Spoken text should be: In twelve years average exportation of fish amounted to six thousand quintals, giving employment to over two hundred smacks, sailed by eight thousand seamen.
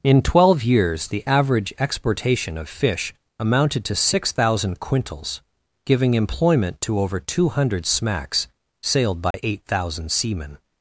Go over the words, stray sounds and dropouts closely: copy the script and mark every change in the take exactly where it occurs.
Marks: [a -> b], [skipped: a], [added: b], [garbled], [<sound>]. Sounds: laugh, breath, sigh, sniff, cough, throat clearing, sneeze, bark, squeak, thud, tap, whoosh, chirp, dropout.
In twelve years [added: the] average exportation of fish amounted to six thousand quintals, giving employment to over two hundred smacks, sailed by [dropout] eight thousand seamen.